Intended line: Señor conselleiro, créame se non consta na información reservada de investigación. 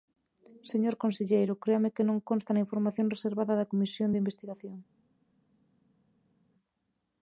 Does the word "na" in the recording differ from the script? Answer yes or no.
no